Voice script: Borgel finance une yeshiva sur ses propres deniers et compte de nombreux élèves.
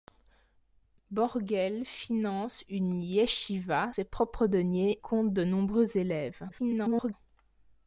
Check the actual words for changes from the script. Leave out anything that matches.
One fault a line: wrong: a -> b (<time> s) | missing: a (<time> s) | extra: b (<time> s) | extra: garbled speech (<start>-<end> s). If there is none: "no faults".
missing: sur (3.9 s)
missing: et (5.0 s)
extra: garbled speech (6.5-7.1 s)